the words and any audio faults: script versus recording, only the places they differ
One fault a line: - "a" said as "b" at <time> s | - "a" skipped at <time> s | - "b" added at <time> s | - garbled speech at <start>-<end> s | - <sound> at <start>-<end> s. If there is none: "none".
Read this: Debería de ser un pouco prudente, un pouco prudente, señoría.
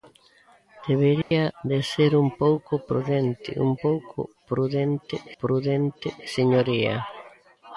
- dropout at 1.2-1.3 s
- "prudente" added at 5.4 s